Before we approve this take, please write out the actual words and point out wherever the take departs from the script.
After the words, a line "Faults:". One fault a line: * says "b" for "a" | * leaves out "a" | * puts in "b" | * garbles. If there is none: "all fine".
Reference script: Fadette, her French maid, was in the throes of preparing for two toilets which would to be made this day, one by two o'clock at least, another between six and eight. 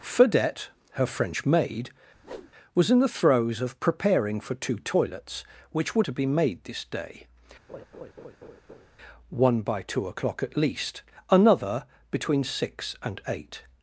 Fadette, her French maid, was in the throes of preparing for two toilets which would to be made this day, one by two o'clock at least, another between six and eight.
Faults:
all fine